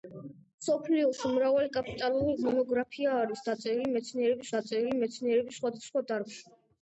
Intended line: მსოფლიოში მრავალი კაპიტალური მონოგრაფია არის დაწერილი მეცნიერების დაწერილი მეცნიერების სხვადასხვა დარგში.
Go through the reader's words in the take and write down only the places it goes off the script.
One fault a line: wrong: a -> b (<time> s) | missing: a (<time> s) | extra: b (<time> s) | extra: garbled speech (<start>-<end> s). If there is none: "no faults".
no faults